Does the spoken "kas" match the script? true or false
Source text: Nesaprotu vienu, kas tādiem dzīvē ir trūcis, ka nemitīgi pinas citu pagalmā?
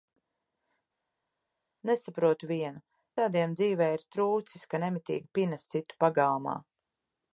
false